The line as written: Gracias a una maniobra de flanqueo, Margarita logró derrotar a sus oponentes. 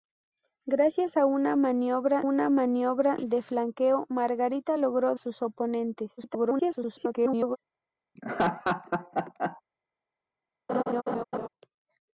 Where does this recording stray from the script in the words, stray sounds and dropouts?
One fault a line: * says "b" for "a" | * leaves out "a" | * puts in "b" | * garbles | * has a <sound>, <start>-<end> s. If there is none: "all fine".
* puts in "una maniobra"
* leaves out "derrotar a"
* garbles
* has a laugh, 8.2-9.6 s
* has a laugh, 10.7-11.5 s